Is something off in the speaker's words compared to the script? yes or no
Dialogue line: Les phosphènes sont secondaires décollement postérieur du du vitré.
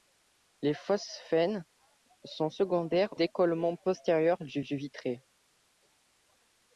no